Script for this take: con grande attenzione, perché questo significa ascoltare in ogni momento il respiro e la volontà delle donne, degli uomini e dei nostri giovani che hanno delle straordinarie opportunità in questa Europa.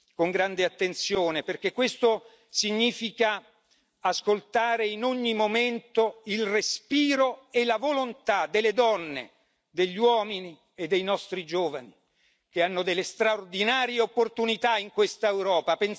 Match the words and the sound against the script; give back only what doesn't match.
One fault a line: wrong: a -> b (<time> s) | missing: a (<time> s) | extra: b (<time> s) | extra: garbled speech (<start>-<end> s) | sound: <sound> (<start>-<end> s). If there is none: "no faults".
no faults